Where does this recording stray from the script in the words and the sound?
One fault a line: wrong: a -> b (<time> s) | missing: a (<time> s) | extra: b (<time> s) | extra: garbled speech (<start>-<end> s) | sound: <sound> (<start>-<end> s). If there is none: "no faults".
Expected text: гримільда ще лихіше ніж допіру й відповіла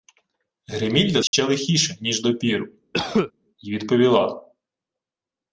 sound: dropout (1.3-1.3 s)
sound: cough (2.9-3.3 s)